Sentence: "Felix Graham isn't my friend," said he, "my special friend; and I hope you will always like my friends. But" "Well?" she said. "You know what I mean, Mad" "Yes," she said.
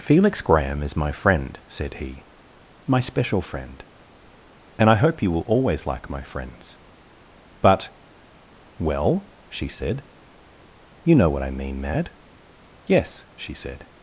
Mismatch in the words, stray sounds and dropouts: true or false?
true